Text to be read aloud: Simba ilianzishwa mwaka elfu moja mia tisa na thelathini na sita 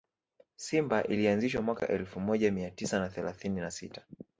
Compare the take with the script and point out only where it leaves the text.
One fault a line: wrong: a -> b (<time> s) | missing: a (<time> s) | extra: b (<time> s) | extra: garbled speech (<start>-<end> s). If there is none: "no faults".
no faults